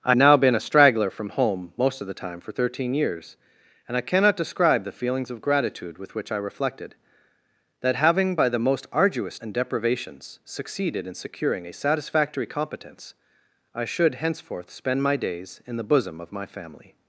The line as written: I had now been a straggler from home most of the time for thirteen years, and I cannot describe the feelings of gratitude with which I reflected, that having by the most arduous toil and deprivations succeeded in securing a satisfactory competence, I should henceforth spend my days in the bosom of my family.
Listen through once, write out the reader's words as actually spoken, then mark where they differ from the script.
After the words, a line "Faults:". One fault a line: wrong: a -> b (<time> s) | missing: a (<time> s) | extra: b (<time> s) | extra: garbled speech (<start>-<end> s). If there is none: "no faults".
I now been a straggler from home most of the time for thirteen years, and I cannot describe the feelings of gratitude with which I reflected, that having by the most arduous and deprivations succeeded in securing a satisfactory competence, I should henceforth spend my days in the bosom of my family.
Faults:
missing: had (0.1 s)
missing: toil (9.4 s)